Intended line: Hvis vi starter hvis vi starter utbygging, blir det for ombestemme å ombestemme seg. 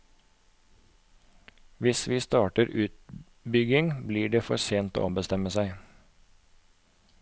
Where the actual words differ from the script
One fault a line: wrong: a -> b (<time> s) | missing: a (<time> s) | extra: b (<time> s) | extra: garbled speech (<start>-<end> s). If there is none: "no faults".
missing: hvis vi starter (2.7 s)
wrong: ombestemme -> sent (4.6 s)